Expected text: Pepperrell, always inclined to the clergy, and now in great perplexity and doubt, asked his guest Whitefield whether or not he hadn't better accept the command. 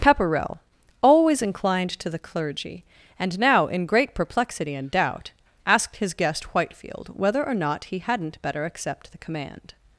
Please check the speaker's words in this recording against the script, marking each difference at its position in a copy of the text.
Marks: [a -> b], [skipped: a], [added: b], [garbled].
Pepperrell, always inclined to the clergy, and now in great perplexity and doubt, asked his guest Whitefield whether or not he hadn't better accept the command.